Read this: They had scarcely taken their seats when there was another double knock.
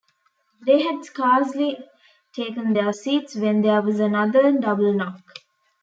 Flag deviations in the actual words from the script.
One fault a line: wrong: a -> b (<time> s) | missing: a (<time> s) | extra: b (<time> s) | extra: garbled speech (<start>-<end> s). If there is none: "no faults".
no faults